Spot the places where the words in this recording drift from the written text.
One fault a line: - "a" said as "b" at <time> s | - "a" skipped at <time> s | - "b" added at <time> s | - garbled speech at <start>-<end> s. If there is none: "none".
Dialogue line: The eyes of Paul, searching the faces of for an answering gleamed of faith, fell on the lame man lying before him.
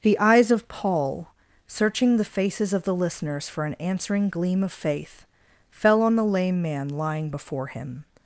- "the listeners" added at 2.9 s
- "gleamed" said as "gleam" at 4.3 s